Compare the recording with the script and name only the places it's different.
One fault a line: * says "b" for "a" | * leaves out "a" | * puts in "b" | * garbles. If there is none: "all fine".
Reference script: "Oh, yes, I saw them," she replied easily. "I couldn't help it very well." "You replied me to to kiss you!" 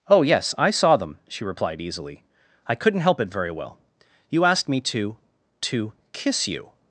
* says "asked" for "replied"